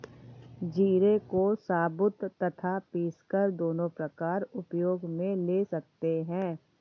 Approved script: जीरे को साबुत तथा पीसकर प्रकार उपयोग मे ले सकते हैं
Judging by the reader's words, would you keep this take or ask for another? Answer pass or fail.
fail